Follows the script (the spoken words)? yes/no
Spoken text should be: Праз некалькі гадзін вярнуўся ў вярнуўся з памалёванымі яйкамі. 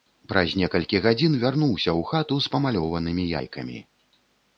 no